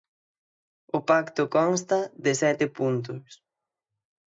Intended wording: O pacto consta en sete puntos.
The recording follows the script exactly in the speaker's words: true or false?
false